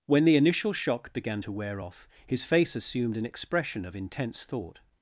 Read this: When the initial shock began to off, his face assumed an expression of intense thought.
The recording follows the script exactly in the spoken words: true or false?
false